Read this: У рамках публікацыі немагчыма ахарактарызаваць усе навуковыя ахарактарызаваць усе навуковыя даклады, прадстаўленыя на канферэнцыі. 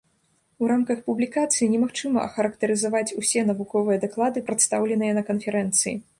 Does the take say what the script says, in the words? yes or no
no